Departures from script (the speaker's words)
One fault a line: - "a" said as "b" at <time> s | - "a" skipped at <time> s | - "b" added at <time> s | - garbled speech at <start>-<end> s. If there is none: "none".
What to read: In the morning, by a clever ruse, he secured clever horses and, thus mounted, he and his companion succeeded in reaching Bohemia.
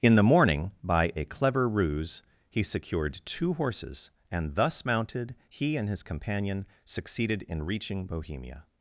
- "clever" said as "two" at 3.2 s